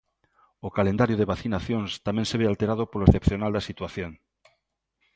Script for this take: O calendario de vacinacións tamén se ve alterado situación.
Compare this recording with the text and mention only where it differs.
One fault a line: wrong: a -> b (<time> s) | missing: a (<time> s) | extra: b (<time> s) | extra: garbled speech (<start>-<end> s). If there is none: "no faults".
extra: polo excepcional da (2.9 s)